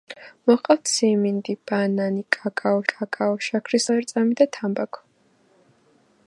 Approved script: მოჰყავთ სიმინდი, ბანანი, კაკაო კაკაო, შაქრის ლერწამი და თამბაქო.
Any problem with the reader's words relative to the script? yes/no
no